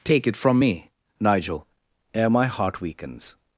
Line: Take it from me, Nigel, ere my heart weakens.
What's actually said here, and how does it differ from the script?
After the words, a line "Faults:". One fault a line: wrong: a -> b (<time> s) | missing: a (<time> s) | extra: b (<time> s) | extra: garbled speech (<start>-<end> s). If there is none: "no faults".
Take it from me, Nigel, ere my heart weakens.
Faults:
no faults